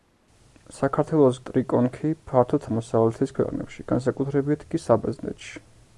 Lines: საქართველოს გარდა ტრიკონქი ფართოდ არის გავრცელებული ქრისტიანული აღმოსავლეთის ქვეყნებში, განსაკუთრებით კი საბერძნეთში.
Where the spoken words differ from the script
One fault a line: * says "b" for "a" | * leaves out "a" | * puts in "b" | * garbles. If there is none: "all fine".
* leaves out "გარდა"
* leaves out "არის გავრცელებული ქრისტიანული"